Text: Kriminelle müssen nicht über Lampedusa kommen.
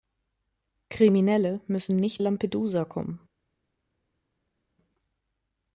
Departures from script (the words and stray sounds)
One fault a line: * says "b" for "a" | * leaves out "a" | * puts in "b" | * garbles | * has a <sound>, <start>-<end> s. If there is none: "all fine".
* leaves out "über"